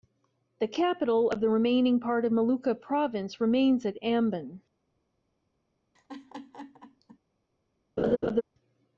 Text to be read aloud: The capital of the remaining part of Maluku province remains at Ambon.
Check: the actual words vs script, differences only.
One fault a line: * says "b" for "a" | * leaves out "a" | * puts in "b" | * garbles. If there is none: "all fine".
all fine